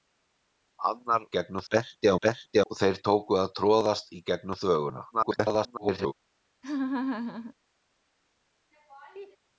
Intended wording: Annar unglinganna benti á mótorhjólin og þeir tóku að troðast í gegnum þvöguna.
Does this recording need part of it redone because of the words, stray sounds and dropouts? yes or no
yes